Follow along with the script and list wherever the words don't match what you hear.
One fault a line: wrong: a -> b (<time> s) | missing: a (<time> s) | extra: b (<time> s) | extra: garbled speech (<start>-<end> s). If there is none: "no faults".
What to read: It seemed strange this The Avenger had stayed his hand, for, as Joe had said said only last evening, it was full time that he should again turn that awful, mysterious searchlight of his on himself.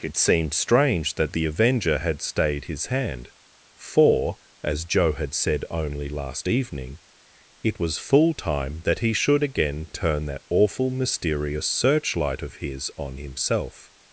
wrong: this -> that (1.1 s)
missing: said (5.6 s)